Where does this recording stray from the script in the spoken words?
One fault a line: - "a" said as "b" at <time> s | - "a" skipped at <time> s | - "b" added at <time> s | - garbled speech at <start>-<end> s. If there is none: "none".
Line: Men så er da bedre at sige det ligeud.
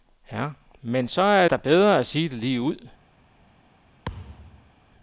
none